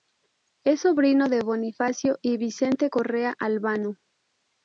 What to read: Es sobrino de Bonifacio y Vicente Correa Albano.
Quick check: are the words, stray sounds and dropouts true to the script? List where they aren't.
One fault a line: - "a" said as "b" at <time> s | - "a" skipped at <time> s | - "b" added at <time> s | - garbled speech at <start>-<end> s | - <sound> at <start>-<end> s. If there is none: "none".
none